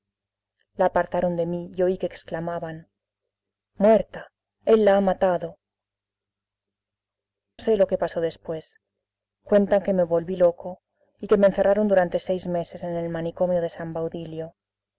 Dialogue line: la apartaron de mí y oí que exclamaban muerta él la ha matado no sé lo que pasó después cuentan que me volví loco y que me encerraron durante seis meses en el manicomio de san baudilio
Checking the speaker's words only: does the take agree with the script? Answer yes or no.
no